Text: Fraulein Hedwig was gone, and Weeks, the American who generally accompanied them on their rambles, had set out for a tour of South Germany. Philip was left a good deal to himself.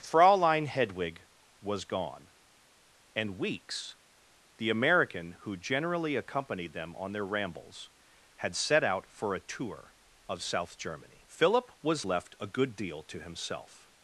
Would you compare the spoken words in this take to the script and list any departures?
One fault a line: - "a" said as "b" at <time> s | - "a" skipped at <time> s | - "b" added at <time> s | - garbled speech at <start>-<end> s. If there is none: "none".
none